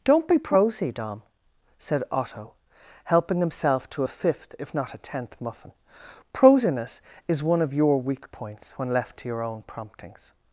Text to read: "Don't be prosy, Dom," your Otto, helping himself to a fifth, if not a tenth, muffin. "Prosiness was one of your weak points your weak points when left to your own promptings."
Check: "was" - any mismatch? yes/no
yes